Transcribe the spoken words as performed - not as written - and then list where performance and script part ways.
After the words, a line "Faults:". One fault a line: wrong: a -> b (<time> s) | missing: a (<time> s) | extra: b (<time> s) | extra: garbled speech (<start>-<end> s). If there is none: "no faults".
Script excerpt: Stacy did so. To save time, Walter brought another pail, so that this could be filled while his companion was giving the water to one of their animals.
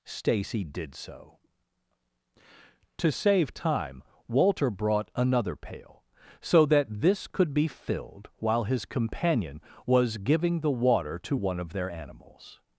Stacy did so. To save time, Walter brought another pail, so that this could be filled while his companion was giving the water to one of their animals.
Faults:
no faults